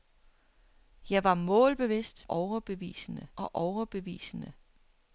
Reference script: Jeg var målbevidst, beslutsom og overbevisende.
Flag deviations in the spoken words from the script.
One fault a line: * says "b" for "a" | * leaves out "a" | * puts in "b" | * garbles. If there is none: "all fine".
* says "overbevisende" for "beslutsom"